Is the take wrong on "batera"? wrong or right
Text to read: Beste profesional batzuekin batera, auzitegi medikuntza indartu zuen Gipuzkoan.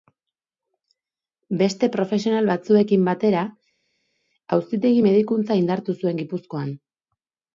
right